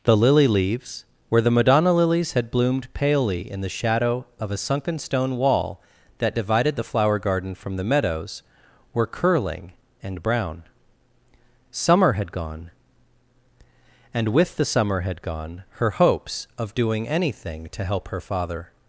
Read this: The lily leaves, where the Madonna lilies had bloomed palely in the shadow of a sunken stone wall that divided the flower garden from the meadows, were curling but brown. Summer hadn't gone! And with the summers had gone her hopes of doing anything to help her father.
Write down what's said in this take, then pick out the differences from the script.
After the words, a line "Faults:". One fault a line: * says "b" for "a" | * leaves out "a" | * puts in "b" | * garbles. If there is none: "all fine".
The lily leaves, where the Madonna lilies had bloomed palely in the shadow of a sunken stone wall that divided the flower garden from the meadows, were curling and brown. Summer had gone! And with the summer had gone her hopes of doing anything to help her father.
Faults:
* says "and" for "but"
* says "had" for "hadn't"
* says "summer" for "summers"